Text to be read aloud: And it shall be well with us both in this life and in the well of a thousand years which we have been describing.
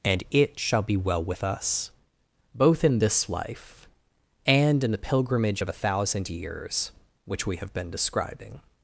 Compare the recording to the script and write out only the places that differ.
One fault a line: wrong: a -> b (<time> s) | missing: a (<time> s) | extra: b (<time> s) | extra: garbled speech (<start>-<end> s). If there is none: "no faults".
wrong: well -> pilgrimage (5.0 s)